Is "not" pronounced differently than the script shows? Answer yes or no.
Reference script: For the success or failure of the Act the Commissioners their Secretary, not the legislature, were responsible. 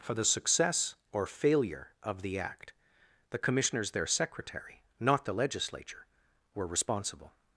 no